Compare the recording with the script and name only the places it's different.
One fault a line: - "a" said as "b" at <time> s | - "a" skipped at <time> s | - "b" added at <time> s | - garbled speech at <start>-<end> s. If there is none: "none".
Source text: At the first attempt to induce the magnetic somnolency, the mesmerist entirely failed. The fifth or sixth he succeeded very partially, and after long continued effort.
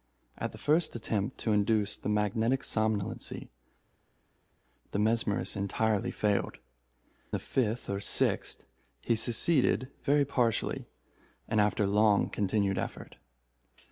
none